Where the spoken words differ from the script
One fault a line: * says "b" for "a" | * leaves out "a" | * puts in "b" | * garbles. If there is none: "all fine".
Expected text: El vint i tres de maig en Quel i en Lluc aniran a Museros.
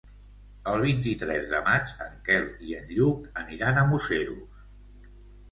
all fine